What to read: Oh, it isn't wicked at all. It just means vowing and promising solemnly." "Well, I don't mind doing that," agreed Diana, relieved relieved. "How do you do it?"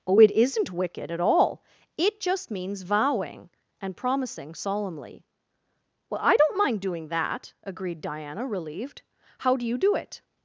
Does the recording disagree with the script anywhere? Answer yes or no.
yes